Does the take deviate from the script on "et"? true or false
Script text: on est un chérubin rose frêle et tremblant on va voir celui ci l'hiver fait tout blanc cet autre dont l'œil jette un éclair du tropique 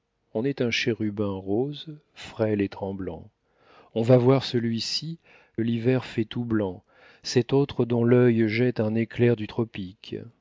false